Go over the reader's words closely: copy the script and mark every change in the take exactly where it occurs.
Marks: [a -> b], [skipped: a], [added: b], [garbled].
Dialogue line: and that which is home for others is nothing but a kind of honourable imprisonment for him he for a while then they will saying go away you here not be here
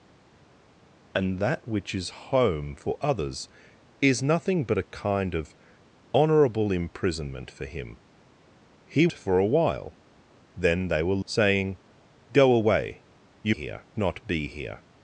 and that which is home for others is nothing but a kind of honourable imprisonment for him he for a while then they will saying go away you here not be here